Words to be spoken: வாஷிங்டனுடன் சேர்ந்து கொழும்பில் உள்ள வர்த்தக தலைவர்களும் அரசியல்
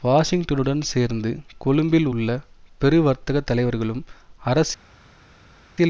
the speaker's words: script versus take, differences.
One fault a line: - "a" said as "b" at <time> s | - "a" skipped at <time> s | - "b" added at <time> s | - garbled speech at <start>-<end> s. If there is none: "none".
- "பெரு" added at 2.8 s